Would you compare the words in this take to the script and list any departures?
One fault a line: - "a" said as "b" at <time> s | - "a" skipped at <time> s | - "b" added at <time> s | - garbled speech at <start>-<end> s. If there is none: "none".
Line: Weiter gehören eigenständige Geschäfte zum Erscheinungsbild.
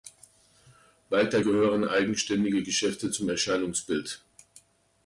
none